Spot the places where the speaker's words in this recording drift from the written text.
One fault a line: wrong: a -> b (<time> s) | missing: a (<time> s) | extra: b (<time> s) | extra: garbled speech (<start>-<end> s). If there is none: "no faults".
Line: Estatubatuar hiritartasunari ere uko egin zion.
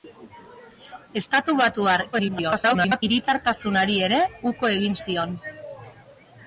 extra: garbled speech (2.1-3.0 s)